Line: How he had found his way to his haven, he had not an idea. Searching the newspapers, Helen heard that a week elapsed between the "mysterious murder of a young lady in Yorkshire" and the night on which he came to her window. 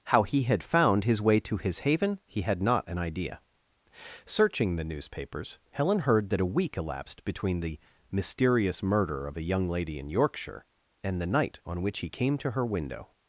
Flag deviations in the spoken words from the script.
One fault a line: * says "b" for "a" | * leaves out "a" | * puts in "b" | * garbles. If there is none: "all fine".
all fine